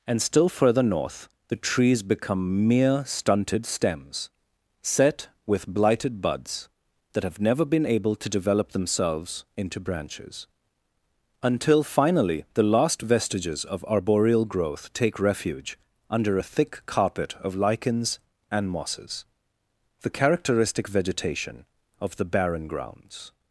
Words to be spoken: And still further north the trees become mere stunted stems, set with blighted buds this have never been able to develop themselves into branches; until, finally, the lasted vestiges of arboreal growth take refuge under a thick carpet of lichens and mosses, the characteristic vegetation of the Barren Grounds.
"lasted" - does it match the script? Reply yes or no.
no